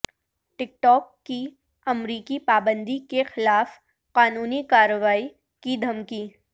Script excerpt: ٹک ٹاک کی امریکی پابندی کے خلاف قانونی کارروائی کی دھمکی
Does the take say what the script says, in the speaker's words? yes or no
yes